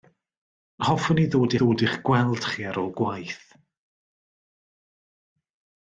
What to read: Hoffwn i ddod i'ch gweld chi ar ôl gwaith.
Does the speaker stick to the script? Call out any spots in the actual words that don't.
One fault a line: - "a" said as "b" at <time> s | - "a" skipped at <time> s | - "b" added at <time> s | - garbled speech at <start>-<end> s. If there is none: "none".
- "ddod" added at 1.6 s